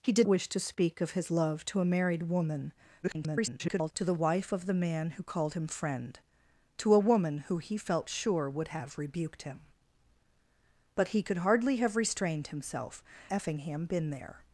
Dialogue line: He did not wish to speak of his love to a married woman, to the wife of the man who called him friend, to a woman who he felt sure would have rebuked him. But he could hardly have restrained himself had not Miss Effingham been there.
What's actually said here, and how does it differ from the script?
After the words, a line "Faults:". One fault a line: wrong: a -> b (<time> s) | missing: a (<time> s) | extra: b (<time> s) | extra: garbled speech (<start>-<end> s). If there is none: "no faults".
He did wish to speak of his love to a married woman, [garbled] to the wife of the man who called him friend, to a woman who he felt sure would have rebuked him. But he could hardly have restrained himself Effingham been there.
Faults:
missing: not (0.3 s)
extra: garbled speech (3.0-3.9 s)
missing: had not Miss (13.0 s)